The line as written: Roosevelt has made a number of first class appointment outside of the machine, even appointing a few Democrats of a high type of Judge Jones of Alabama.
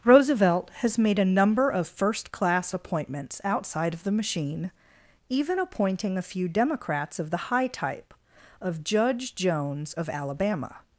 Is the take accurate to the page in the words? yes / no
no